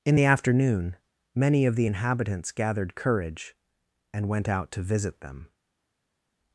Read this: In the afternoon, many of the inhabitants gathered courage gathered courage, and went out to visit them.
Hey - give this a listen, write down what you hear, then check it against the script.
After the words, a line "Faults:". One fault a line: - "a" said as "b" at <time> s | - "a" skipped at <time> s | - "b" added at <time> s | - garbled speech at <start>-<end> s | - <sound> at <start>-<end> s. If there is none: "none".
In the afternoon, many of the inhabitants gathered courage, and went out to visit them.
Faults:
- "gathered courage" skipped at 3.6 s